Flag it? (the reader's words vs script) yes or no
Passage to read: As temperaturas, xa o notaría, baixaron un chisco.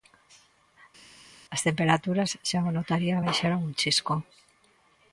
no